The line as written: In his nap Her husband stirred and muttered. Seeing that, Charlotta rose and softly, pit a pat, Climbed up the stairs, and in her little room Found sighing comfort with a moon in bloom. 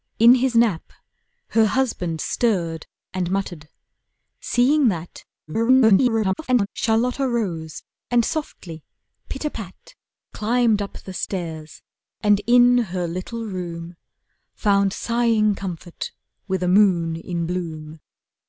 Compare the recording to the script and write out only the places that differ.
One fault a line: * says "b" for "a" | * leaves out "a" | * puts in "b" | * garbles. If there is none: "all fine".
* garbles